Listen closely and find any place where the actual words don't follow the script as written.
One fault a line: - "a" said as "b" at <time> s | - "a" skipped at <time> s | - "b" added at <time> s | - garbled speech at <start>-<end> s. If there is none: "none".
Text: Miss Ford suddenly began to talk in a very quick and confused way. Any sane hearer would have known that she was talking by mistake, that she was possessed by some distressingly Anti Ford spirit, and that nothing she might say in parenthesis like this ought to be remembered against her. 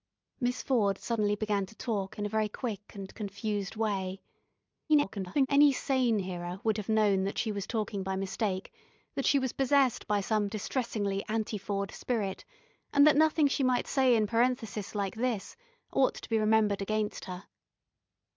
- garbled speech at 4.9-5.5 s